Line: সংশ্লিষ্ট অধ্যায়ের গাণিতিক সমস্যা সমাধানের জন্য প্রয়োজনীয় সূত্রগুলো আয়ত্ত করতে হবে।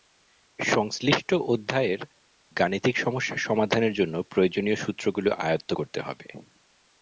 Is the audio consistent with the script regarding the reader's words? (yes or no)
yes